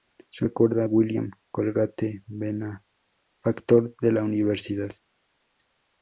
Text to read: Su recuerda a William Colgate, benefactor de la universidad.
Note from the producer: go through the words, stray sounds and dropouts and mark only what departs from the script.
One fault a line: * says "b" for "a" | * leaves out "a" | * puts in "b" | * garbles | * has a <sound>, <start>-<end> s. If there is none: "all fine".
all fine